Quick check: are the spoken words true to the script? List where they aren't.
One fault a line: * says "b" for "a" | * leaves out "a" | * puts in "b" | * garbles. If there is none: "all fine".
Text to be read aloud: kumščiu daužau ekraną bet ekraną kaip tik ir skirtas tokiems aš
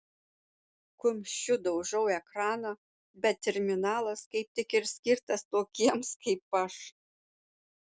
* says "terminalas" for "ekraną"
* puts in "kaip"